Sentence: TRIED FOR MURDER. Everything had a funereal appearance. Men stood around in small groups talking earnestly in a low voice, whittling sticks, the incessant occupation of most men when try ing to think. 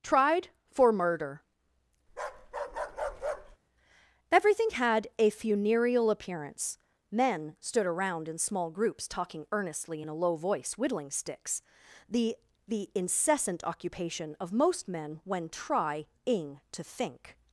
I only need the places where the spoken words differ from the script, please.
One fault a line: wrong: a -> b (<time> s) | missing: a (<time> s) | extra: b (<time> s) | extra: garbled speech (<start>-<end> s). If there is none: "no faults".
extra: the (12.7 s)